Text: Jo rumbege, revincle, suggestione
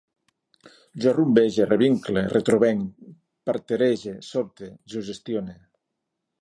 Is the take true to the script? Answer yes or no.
no